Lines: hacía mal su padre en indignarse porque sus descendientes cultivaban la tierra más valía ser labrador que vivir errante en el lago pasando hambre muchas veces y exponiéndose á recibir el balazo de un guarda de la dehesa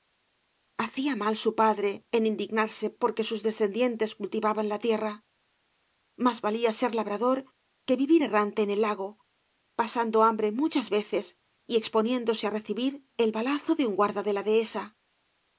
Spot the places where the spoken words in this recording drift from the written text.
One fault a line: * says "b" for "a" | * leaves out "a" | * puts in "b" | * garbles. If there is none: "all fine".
all fine